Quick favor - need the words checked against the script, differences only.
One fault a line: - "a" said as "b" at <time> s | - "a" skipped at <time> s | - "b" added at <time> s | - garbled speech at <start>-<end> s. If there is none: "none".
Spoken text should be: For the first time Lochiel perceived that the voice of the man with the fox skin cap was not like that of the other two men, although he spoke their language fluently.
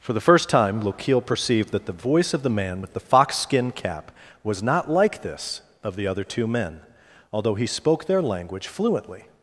- "that" said as "this" at 5.2 s